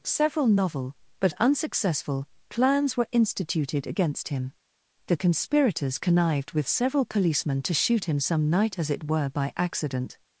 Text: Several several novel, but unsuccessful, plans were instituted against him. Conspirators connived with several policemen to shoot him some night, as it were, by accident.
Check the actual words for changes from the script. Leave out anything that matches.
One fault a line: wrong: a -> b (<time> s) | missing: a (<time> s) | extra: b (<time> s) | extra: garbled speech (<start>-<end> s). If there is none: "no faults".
missing: several (0.5 s)
extra: The (5.0 s)